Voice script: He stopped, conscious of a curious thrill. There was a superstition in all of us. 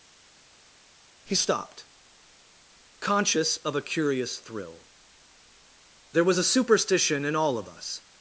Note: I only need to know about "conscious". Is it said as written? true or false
true